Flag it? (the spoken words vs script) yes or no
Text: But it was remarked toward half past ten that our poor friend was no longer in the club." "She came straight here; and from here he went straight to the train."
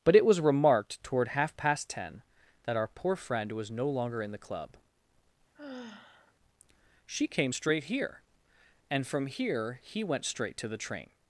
no